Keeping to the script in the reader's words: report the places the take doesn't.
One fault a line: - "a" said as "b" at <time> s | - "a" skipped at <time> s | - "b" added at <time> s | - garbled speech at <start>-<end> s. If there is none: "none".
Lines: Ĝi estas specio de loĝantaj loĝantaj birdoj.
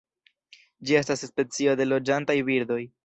- "loĝantaj" skipped at 2.4 s